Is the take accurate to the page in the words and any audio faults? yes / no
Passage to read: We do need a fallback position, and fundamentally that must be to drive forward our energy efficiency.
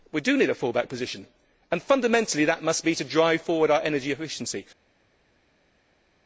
yes